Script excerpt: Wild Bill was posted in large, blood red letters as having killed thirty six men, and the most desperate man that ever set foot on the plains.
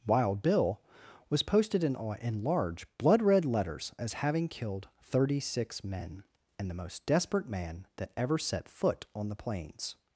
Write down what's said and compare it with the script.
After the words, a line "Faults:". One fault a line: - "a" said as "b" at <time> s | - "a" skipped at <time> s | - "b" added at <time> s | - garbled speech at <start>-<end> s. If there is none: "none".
Wild Bill was posted in in large, blood red letters as having killed thirty six men, and the most desperate man that ever set foot on the plains.
Faults:
- "in" added at 2.2 s